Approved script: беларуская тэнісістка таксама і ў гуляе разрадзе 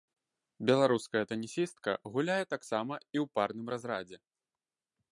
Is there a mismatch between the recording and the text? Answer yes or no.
yes